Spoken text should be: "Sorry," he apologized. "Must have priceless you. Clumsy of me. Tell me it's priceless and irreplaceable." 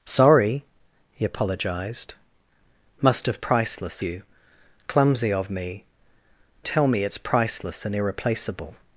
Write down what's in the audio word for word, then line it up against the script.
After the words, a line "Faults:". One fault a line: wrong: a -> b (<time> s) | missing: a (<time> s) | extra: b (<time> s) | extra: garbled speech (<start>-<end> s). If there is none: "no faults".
"Sorry," he apologized. "Must have priceless you. Clumsy of me. Tell me it's priceless and irreplaceable."
Faults:
no faults